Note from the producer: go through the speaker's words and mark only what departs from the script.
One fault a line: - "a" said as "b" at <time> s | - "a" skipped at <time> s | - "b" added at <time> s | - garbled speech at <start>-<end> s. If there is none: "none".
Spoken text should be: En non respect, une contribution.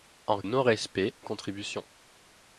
none